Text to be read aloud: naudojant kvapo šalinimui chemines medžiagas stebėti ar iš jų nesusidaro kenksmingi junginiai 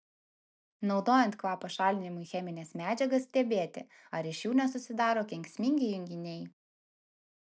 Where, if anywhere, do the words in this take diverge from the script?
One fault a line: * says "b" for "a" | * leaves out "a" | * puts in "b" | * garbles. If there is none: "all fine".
all fine